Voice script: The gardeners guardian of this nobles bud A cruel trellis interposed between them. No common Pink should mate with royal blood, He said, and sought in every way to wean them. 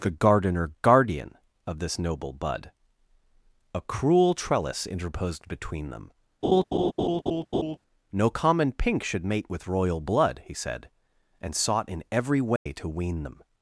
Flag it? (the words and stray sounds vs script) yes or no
yes